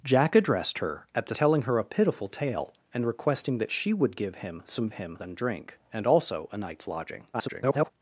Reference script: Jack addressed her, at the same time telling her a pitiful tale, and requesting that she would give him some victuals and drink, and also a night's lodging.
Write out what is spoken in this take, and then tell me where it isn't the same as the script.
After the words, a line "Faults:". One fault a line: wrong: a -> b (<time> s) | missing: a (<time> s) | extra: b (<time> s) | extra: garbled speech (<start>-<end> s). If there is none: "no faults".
Jack addressed her, at the telling her a pitiful tale, and requesting that she would give him some him and drink, and also a night's lodging. [garbled]
Faults:
missing: same time (1.4 s)
wrong: victuals -> him (4.9 s)
extra: garbled speech (7.3-7.9 s)